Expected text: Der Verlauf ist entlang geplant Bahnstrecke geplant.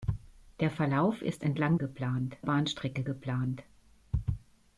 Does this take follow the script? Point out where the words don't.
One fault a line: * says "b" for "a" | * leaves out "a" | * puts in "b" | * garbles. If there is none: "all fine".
all fine